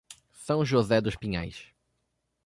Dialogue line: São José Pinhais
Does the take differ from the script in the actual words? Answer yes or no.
yes